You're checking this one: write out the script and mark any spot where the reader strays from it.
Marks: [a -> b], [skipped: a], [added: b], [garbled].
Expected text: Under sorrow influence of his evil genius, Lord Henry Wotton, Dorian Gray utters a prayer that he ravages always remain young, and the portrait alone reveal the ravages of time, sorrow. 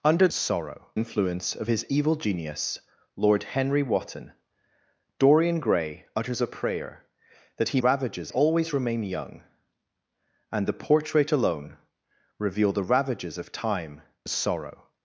Under sorrow influence of his evil genius, Lord Henry Wotton, Dorian Gray utters a prayer that he ravages always remain young, and the portrait alone reveal the ravages of time, sorrow.